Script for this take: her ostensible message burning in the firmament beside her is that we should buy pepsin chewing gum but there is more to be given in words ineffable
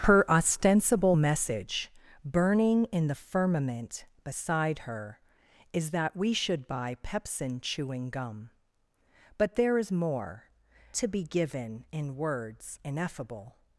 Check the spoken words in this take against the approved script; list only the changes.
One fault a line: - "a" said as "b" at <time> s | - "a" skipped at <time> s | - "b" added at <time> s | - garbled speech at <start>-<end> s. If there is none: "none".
none